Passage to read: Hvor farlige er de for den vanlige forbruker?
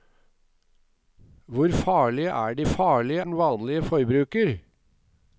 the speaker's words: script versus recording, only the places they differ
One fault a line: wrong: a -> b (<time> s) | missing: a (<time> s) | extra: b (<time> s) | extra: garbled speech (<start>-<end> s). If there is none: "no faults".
wrong: for -> farlige (2.6 s)